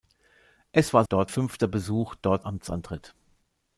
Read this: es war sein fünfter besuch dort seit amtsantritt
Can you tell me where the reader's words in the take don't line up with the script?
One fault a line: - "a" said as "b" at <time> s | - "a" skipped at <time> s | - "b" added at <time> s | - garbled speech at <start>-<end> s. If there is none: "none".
- "sein" said as "dort" at 1.0 s
- "seit" skipped at 2.5 s